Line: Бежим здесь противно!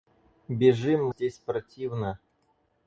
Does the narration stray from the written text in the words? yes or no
no